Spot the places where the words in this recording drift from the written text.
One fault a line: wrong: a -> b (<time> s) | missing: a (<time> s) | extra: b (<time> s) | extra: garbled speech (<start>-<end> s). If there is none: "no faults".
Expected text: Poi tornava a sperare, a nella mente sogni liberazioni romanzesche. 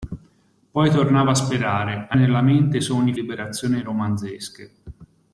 no faults